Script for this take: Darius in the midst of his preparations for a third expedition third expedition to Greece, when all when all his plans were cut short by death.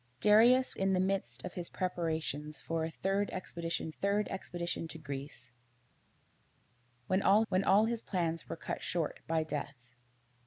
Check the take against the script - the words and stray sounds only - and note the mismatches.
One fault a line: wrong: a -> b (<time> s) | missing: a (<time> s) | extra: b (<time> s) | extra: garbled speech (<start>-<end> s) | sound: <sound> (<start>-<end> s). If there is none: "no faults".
no faults